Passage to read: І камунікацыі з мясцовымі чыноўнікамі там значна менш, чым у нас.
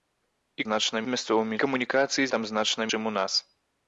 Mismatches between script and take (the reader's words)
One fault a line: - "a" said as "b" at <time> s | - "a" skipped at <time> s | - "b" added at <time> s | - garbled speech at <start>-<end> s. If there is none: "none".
- "камунікацыі" said as "значна" at 0.7 s
- "чыноўнікамі" said as "камунікацыі" at 1.6 s
- "менш" skipped at 2.9 s